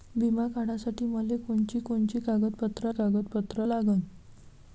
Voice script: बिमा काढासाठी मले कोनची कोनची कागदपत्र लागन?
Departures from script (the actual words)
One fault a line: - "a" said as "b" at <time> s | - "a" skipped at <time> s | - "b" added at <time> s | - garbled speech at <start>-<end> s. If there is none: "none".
- "कागदपत्र" added at 2.9 s